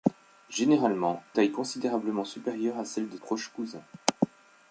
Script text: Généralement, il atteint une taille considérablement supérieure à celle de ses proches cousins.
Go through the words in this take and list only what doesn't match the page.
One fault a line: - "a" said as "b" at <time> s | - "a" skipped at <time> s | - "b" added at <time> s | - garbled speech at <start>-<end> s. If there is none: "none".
- "il atteint une" skipped at 1.2 s
- "ses" skipped at 3.2 s